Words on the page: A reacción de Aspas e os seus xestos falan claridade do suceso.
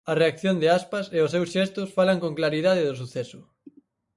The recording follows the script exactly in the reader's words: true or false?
false